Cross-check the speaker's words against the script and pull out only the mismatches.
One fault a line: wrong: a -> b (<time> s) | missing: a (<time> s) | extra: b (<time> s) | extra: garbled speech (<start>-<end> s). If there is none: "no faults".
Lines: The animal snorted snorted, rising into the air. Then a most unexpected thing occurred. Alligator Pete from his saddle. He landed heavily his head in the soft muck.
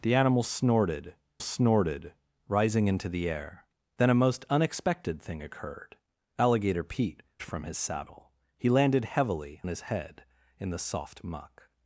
no faults